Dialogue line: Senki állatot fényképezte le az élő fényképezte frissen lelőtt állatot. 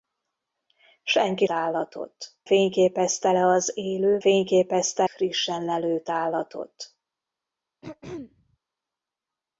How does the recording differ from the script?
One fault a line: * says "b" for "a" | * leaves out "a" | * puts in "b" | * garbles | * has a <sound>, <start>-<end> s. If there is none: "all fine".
* has a throat clearing, 7.8-8.6 s